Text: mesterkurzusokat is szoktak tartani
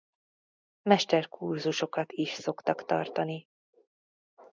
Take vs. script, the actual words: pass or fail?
pass